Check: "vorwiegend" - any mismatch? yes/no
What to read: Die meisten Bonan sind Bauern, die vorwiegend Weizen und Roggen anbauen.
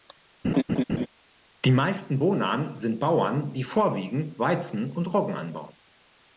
no